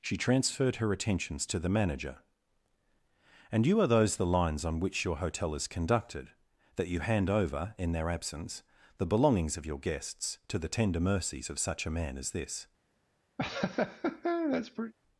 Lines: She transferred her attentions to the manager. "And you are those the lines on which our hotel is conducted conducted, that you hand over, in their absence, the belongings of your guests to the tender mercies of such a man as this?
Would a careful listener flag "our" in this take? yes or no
yes